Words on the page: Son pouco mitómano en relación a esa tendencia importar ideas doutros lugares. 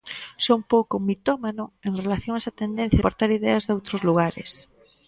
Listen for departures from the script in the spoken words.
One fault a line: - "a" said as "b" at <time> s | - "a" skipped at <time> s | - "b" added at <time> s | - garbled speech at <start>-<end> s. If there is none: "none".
none